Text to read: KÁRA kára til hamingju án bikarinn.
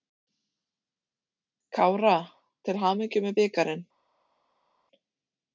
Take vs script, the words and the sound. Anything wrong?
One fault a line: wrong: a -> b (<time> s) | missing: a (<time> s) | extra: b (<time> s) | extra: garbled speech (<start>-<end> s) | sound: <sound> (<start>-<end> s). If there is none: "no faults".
missing: kára (2.1 s)
wrong: án -> með (3.3 s)